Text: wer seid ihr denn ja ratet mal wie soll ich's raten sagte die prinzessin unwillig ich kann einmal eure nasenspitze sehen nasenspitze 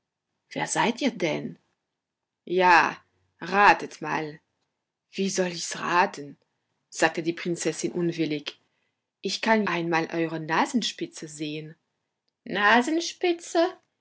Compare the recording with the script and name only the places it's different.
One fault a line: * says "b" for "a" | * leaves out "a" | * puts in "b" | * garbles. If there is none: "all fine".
all fine